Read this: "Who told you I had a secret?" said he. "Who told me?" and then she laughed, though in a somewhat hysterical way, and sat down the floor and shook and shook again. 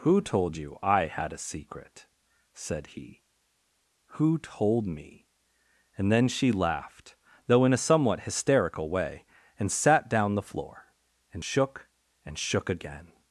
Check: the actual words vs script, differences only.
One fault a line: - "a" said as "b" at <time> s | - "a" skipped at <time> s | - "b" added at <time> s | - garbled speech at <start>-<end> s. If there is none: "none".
none